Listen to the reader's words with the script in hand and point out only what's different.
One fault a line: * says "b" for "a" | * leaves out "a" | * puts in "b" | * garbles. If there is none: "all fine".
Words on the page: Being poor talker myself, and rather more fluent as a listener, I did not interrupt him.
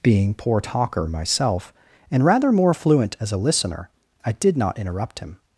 all fine